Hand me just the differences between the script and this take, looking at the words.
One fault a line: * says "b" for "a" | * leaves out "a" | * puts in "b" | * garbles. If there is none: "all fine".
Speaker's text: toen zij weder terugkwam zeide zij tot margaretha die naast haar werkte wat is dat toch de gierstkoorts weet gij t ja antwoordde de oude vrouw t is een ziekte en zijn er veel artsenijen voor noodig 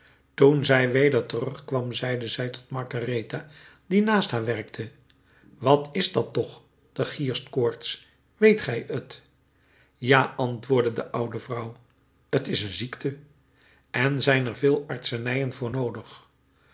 all fine